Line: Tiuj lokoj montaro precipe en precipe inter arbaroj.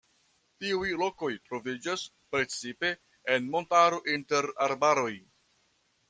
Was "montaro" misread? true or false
true